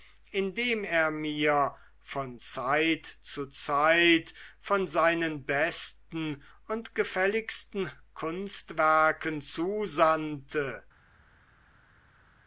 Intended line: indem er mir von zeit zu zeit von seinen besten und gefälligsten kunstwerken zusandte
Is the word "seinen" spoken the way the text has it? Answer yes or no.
yes